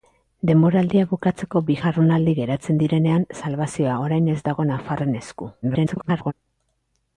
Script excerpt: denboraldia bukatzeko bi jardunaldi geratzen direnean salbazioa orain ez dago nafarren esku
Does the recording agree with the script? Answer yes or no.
no